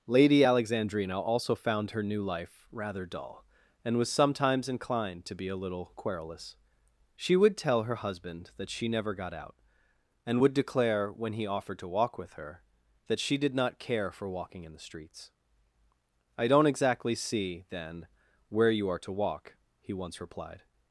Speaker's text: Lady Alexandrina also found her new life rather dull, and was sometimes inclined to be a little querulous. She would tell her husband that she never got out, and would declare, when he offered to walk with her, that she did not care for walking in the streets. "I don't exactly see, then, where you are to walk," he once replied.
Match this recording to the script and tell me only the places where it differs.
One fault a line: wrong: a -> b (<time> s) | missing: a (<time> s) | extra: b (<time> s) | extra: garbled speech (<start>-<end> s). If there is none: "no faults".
no faults